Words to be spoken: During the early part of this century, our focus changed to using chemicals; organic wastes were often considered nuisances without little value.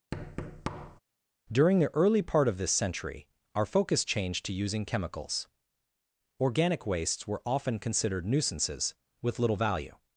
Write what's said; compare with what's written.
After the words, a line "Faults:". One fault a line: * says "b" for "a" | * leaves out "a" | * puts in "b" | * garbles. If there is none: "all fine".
During the early part of this century, our focus changed to using chemicals; organic wastes were often considered nuisances with little value.
Faults:
* says "with" for "without"